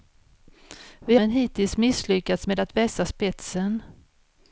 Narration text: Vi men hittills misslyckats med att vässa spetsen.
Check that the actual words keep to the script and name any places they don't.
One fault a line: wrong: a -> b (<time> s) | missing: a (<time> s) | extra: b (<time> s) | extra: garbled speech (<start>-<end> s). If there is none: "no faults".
no faults